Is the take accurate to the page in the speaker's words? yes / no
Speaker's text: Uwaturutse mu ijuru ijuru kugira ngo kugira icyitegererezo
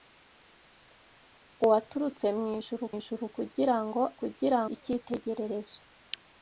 yes